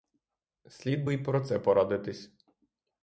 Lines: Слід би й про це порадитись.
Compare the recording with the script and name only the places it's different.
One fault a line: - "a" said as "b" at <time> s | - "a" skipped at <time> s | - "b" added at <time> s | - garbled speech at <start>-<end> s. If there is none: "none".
none